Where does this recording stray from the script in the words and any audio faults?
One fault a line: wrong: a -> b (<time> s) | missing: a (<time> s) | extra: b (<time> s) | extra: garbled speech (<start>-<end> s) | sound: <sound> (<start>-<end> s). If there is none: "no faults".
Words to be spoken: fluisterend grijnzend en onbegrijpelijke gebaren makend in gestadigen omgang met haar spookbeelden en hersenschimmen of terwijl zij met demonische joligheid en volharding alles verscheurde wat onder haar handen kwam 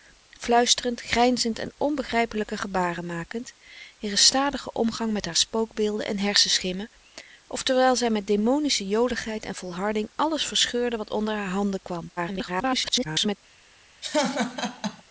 extra: garbled speech (12.2-13.4 s)
sound: laugh (14.0-15.0 s)